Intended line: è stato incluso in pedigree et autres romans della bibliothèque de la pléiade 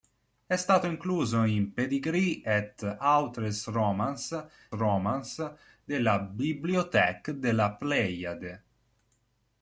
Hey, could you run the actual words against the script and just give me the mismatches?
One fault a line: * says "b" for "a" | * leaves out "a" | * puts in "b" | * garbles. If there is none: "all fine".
* puts in "romans"